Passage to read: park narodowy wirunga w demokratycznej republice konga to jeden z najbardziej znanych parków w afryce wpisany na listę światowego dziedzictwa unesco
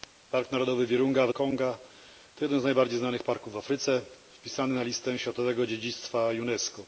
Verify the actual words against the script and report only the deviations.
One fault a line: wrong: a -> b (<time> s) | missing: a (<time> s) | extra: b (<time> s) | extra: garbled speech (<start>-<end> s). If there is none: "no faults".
missing: demokratycznej republice (1.3 s)